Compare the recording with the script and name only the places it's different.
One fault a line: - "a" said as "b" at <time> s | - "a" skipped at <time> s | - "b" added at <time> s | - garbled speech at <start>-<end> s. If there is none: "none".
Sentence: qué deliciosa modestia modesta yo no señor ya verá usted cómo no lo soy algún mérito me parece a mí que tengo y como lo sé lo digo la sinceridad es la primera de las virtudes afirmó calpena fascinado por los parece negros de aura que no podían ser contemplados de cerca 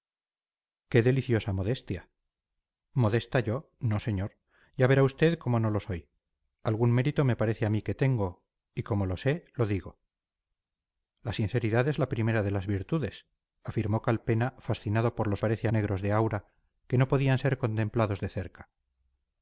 none